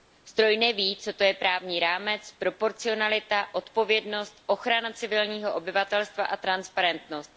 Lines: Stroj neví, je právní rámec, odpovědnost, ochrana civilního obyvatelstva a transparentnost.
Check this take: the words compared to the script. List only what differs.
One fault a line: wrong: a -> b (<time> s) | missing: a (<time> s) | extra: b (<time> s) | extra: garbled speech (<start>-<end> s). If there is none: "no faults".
extra: co to (1.0 s)
extra: proporcionalita (2.4 s)